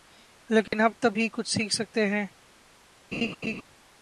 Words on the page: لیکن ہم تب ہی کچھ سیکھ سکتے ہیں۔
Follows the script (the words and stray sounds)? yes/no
no